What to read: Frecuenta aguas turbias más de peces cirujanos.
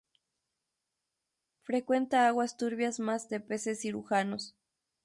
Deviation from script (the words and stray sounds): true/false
false